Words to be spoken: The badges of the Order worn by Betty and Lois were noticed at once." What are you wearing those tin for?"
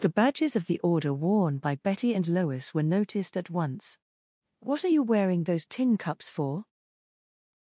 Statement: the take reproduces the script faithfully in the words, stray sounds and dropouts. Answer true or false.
false